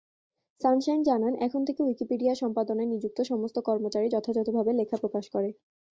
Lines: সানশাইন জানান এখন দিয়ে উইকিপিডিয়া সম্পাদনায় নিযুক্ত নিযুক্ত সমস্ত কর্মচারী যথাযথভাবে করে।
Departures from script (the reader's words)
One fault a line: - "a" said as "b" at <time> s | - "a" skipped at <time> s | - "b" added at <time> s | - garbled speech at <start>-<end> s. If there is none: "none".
- "দিয়ে" said as "থেকে" at 1.7 s
- "নিযুক্ত" skipped at 3.2 s
- "লেখা প্রকাশ" added at 4.8 s